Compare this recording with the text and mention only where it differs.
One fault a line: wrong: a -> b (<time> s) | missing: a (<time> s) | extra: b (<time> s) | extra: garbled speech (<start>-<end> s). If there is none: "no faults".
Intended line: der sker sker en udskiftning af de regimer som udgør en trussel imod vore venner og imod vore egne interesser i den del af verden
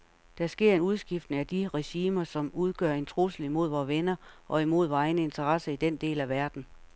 missing: sker (0.8 s)